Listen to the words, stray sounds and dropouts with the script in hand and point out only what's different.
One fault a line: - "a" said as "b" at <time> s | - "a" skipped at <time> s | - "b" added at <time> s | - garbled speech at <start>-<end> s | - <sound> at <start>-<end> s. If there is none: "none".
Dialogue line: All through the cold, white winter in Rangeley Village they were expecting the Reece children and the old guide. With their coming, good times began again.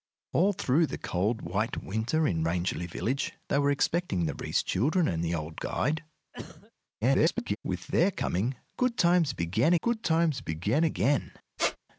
- cough at 6.3-6.7 s
- garbled speech at 7.0-7.6 s
- "good times began" added at 9.8 s
- squeak at 11.6-11.8 s